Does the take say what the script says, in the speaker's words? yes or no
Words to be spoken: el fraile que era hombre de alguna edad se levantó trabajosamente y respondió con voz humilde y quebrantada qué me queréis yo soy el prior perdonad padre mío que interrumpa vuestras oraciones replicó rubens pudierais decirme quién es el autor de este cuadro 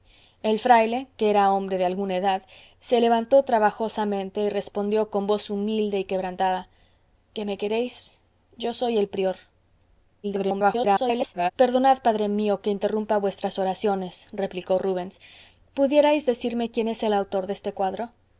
no